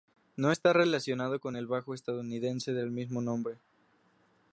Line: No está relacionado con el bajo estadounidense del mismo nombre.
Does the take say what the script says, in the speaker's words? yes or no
yes